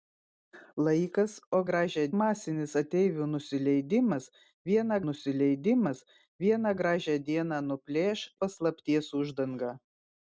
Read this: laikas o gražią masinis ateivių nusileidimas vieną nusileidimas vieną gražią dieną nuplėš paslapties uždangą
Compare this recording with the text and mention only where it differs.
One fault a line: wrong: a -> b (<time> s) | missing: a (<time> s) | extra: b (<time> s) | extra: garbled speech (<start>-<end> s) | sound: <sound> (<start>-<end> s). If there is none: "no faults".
no faults